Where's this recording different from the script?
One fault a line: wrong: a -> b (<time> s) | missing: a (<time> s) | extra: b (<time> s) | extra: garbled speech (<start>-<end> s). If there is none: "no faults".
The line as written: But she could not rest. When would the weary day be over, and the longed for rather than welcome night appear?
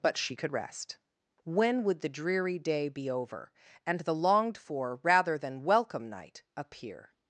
missing: not (0.5 s)
wrong: weary -> dreary (2.1 s)